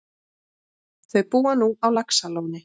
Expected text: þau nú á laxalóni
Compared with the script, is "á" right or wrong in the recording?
right